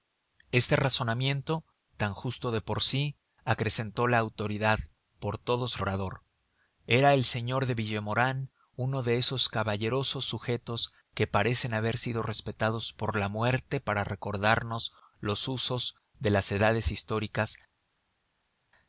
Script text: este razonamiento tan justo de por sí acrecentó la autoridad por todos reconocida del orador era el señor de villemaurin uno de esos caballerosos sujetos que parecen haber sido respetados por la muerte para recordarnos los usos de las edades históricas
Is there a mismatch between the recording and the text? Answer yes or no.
yes